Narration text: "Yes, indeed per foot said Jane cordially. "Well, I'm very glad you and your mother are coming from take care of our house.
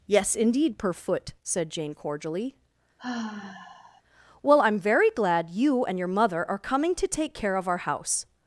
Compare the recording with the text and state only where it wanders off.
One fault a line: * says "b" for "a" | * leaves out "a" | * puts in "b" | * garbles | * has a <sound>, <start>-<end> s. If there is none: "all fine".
* has a sigh, 3.0-4.0 s
* says "to" for "from"